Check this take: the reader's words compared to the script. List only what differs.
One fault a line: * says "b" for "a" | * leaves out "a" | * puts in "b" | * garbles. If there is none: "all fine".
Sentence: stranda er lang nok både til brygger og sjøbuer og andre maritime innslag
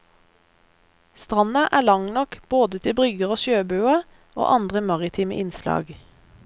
all fine